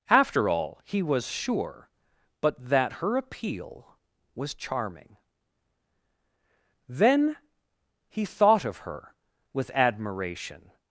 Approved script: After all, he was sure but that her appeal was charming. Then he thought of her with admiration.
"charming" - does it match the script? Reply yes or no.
yes